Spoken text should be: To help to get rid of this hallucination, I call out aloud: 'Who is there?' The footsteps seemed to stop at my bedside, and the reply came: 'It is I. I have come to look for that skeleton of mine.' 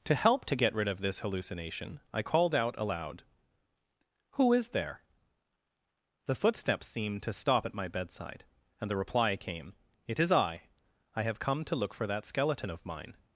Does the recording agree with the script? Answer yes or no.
no